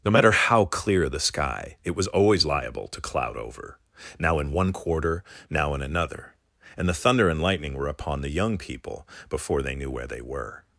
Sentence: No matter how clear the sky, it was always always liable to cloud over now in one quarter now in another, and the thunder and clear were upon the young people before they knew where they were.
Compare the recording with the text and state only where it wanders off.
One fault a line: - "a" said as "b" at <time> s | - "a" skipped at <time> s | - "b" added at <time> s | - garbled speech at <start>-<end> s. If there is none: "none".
- "always" skipped at 2.5 s
- "clear" said as "lightning" at 7.4 s